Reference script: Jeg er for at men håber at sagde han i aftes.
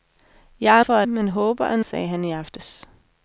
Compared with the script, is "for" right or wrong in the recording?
right